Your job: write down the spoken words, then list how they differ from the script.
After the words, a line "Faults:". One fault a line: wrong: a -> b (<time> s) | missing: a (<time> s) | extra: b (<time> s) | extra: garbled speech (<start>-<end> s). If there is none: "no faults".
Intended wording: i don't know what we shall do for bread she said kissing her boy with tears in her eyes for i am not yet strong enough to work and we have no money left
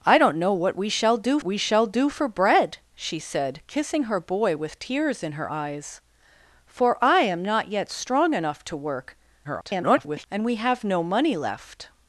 i don't know what we shall do we shall do for bread she said kissing her boy with tears in her eyes for i am not yet strong enough to work [garbled] and we have no money left
Faults:
extra: we shall do (1.4 s)
extra: garbled speech (9.4-10.3 s)